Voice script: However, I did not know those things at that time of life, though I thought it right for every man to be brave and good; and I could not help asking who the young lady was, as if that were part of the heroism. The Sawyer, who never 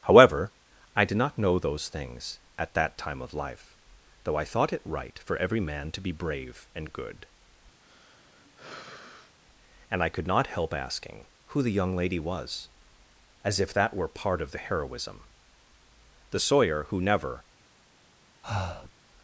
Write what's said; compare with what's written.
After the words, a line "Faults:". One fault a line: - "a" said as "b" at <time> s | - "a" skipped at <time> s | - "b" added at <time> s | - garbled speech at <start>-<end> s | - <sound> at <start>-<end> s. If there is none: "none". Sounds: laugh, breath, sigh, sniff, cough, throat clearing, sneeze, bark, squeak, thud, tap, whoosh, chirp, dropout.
However, I did not know those things at that time of life, though I thought it right for every man to be brave and good; and I could not help asking who the young lady was, as if that were part of the heroism. The Sawyer, who never
Faults:
- sigh at 7.8-9.4 s
- breath at 18.4-18.9 s